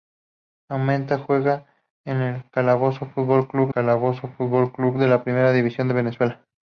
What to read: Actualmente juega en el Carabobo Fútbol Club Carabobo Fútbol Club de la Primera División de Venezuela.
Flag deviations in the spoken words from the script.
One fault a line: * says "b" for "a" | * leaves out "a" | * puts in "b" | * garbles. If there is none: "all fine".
all fine